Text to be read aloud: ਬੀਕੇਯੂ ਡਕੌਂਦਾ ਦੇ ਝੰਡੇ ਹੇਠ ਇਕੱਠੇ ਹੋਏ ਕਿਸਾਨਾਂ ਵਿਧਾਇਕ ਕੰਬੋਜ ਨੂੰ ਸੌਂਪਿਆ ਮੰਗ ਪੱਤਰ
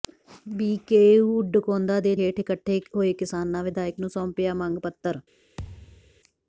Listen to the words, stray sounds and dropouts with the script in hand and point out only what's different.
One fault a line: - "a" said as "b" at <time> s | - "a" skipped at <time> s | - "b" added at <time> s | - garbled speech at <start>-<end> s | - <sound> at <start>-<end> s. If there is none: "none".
- "ਝੰਡੇ" skipped at 2.1 s
- "ਕੰਬੋਜ" skipped at 4.0 s
- thud at 5.6-6.2 s